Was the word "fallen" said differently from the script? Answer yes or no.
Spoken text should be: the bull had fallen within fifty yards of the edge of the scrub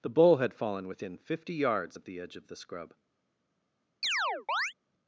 no